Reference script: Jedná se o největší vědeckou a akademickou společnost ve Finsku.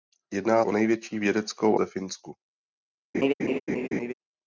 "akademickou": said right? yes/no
no